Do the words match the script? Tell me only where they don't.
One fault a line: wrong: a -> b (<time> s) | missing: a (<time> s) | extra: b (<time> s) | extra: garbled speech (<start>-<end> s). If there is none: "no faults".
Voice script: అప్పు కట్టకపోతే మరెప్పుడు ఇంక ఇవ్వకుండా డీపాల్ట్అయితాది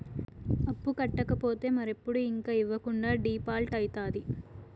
no faults